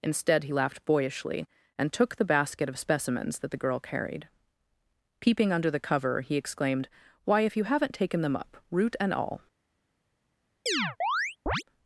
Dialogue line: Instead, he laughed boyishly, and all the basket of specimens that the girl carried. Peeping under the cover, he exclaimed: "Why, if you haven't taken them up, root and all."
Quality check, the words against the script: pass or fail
fail